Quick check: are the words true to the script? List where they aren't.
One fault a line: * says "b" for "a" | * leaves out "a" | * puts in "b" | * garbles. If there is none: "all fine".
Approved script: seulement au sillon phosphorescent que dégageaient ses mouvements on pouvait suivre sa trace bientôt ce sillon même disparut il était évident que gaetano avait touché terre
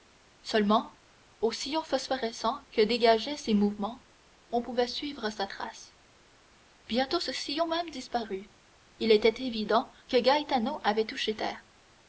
all fine